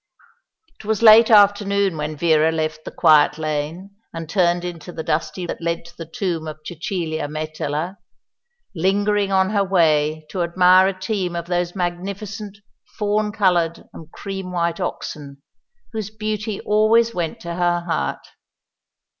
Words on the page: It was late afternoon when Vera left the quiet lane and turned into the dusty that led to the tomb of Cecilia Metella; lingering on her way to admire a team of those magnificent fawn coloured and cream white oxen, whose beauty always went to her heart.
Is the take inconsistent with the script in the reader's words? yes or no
no